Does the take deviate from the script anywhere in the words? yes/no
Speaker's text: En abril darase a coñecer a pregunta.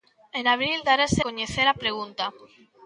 yes